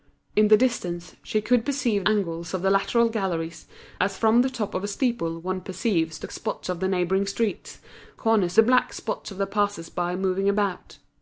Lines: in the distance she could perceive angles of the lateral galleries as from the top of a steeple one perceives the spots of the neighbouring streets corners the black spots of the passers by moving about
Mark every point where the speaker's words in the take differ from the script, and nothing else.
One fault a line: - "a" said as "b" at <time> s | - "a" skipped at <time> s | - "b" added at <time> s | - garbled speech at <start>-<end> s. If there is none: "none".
none